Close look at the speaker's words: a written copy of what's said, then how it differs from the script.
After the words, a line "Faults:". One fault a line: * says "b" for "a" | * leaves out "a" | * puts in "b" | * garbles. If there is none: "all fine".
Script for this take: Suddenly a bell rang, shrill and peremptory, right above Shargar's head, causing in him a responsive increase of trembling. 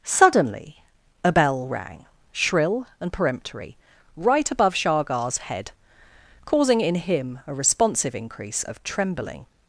Suddenly a bell rang, shrill and peremptory, right above Shargar's head, causing in him a responsive increase of trembling.
Faults:
all fine